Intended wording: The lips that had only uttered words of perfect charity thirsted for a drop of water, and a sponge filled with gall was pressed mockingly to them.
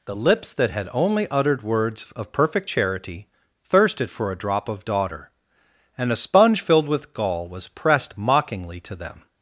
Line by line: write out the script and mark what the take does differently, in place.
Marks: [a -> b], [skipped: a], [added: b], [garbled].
The lips that had only uttered words of perfect charity thirsted for a drop of [water, -> daughter] and a sponge filled with gall was pressed mockingly to them.